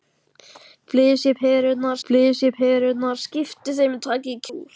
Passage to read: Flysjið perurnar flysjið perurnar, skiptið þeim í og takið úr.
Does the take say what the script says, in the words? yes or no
yes